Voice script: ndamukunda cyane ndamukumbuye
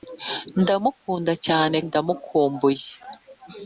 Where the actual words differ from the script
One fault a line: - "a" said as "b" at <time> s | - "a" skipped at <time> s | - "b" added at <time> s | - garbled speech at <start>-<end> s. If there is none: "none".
none